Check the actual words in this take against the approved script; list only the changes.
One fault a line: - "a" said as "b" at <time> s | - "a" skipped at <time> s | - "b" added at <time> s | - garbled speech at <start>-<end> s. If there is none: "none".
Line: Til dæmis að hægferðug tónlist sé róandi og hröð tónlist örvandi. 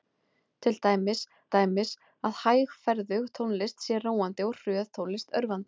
- "dæmis" added at 1.5 s